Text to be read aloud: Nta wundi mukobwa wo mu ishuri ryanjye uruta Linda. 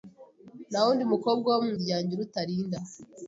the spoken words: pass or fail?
fail